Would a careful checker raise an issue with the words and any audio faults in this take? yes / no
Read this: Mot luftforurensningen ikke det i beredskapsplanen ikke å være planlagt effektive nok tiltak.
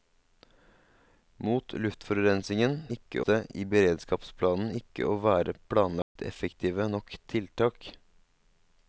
yes